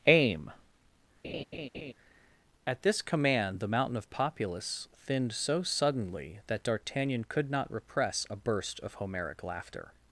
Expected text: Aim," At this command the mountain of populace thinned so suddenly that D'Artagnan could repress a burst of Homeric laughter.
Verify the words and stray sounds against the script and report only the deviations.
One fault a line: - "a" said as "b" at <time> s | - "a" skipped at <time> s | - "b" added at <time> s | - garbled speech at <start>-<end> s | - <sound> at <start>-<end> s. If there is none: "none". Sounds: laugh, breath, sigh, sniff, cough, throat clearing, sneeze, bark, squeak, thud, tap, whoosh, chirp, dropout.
- laugh at 1.2-1.9 s
- "not" added at 7.5 s